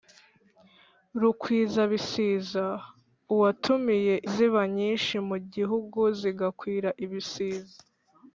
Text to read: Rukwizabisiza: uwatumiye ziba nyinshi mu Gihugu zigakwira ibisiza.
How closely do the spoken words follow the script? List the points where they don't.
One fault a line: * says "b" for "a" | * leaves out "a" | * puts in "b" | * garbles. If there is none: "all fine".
all fine